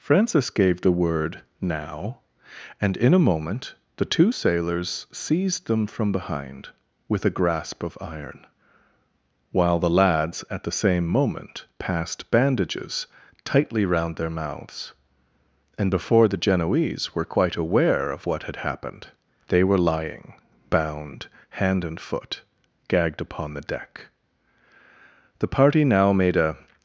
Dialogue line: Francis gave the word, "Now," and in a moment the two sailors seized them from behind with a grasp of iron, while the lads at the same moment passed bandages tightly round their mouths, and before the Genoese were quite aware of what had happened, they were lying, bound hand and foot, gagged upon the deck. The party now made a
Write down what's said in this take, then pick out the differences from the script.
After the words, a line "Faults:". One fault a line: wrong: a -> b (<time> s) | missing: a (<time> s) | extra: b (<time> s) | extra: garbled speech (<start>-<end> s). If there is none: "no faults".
Francis gave the word, "Now," and in a moment the two sailors seized them from behind with a grasp of iron, while the lads at the same moment passed bandages tightly round their mouths, and before the Genoese were quite aware of what had happened, they were lying, bound hand and foot, gagged upon the deck. The party now made a
Faults:
no faults